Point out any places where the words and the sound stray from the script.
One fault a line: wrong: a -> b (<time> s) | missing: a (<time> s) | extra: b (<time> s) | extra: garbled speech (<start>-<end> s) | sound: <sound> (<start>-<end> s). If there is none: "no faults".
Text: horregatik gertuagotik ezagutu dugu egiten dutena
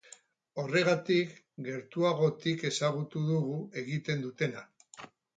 no faults